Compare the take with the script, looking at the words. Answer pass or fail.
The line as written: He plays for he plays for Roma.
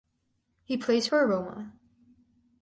fail